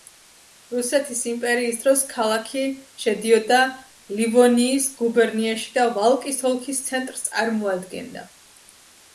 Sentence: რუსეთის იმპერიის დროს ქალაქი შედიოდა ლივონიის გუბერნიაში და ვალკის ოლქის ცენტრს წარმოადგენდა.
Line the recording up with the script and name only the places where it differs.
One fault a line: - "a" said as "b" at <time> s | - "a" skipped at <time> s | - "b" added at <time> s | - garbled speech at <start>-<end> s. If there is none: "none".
none